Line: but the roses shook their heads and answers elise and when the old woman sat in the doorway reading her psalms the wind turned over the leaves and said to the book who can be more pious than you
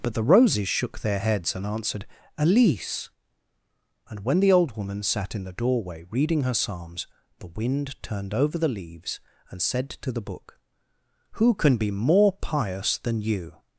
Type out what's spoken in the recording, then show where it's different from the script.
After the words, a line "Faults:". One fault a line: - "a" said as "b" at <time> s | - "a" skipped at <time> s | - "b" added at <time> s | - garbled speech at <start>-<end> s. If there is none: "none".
but the roses shook their heads and answered elise and when the old woman sat in the doorway reading her psalms the wind turned over the leaves and said to the book who can be more pious than you
Faults:
- "answers" said as "answered" at 1.6 s